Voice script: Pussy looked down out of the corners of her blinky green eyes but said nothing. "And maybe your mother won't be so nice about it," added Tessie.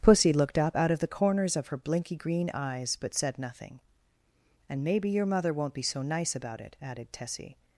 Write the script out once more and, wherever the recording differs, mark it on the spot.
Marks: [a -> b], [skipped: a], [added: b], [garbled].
Pussy looked [down -> up] out of the corners of her blinky green eyes but said nothing. "And maybe your mother won't be so nice about it," added Tessie.